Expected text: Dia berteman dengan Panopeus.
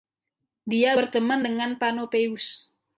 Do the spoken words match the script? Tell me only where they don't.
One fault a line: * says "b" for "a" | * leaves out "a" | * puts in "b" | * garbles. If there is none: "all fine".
all fine